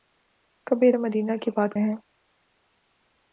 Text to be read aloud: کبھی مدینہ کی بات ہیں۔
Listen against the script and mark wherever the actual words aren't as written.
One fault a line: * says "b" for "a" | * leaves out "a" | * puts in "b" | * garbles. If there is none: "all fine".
all fine